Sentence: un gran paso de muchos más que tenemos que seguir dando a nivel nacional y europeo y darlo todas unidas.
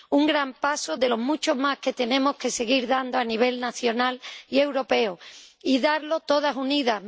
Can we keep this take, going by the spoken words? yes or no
no